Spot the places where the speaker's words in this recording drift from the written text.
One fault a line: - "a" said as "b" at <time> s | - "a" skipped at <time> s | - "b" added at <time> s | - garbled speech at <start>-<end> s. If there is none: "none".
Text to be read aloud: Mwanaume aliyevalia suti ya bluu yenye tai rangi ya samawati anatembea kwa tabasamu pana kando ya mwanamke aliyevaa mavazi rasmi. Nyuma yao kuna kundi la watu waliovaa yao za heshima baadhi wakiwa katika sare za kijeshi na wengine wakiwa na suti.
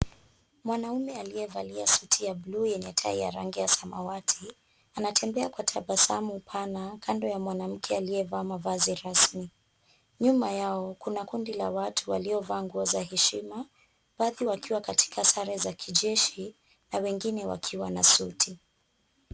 - "ya" added at 3.2 s
- "yao" said as "nguo" at 12.6 s